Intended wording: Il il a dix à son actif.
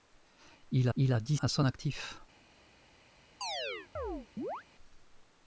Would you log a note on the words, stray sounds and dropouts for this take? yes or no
yes